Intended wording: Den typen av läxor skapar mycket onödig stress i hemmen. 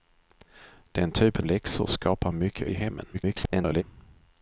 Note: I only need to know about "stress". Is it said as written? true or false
false